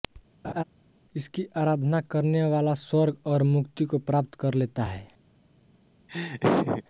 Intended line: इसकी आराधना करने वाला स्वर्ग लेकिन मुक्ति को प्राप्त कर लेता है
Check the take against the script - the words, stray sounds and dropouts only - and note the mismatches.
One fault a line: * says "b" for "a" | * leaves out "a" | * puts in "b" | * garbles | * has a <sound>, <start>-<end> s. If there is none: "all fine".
* has a laugh, 0.4-0.6 s
* says "और" for "लेकिन"
* has a laugh, 6.1-6.8 s